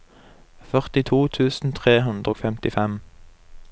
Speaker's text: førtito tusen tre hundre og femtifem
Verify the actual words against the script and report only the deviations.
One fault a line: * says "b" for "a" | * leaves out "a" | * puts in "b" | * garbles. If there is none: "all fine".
all fine